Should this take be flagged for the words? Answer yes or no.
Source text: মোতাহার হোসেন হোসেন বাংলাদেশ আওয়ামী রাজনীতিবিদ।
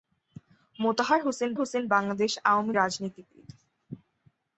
no